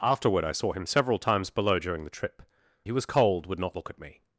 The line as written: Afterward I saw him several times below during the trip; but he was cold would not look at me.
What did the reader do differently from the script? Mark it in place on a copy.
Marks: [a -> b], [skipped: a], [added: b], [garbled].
Afterward I saw him several times below during the trip; [skipped: but] he was cold would not look at me.